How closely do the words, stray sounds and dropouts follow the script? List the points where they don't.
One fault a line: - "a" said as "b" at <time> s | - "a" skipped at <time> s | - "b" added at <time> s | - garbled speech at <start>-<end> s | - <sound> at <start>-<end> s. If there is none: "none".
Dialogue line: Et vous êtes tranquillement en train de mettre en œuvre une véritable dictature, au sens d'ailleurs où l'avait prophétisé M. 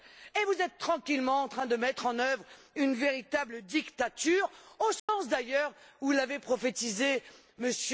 - dropout at 5.0-5.1 s